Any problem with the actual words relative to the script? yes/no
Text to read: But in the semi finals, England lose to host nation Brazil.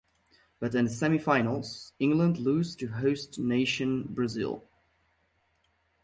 no